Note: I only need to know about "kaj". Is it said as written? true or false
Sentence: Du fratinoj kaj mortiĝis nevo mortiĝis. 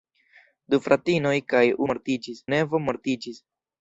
true